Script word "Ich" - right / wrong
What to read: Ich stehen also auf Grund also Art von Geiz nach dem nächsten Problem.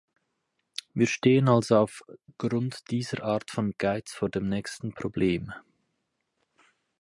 wrong